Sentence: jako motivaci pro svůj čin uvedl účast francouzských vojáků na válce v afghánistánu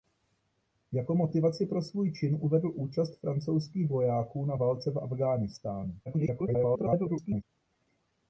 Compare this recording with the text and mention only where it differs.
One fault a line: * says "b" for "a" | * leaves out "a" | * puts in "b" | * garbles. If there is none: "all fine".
* garbles